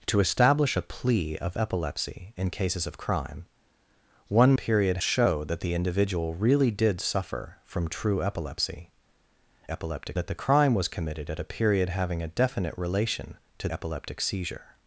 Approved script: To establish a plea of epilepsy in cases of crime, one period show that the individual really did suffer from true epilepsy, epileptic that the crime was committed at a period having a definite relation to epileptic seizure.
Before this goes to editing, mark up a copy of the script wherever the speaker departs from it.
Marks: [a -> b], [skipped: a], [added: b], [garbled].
To establish a plea of epilepsy in cases of crime, one period show that the individual really did suffer from true epilepsy, epileptic that the crime was committed at a period having a definite relation to epileptic seizure.